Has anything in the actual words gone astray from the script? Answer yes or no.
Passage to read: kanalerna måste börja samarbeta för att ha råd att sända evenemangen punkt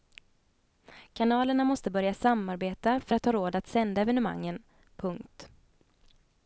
no